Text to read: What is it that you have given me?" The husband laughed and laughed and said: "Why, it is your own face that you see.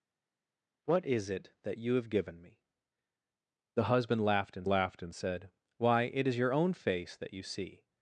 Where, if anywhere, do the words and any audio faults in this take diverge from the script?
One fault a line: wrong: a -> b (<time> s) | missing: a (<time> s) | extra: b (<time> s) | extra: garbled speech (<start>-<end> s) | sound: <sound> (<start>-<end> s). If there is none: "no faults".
no faults